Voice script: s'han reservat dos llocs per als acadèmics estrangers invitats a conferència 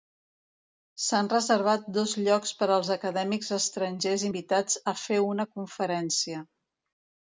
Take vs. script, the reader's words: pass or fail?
fail